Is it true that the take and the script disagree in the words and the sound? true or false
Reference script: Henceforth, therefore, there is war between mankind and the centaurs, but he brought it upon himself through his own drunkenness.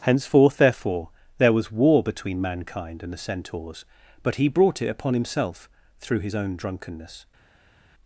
true